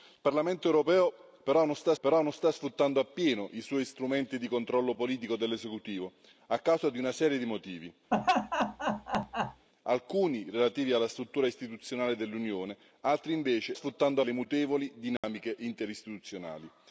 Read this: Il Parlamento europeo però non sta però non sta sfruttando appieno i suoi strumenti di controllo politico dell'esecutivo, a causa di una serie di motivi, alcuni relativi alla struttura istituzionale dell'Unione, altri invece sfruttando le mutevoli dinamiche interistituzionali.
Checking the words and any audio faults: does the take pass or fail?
fail